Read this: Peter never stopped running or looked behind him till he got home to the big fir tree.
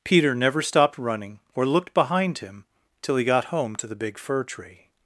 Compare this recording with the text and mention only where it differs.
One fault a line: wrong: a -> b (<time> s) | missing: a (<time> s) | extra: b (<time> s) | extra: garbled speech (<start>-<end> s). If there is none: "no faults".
no faults